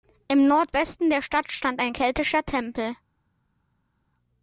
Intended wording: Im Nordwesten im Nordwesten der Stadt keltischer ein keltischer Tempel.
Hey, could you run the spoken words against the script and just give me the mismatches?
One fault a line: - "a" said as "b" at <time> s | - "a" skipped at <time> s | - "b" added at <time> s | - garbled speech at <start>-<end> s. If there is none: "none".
- "im Nordwesten" skipped at 1.1 s
- "keltischer" said as "stand" at 1.5 s